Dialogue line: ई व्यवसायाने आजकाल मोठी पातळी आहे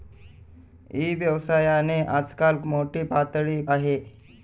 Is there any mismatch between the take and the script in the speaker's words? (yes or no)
no